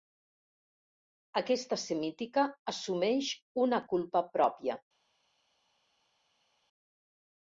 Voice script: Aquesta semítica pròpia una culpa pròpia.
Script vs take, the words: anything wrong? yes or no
yes